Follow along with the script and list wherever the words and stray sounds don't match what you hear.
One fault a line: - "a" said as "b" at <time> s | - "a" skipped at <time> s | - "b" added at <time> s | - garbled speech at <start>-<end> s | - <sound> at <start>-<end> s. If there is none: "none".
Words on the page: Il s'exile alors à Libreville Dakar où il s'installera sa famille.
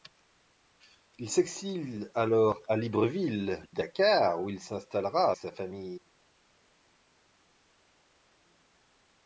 none